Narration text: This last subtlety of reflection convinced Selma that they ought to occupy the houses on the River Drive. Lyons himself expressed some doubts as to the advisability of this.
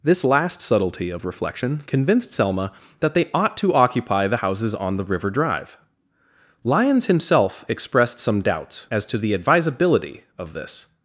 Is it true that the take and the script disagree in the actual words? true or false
false